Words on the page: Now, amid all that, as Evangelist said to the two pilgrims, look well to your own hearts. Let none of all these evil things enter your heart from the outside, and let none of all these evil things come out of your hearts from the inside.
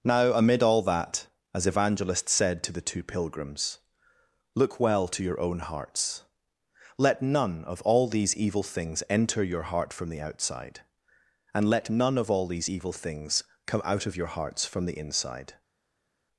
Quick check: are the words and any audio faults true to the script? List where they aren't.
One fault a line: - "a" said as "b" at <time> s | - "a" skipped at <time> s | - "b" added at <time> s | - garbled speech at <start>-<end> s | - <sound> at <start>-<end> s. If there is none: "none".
none